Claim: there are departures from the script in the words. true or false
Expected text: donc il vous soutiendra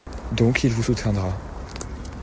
false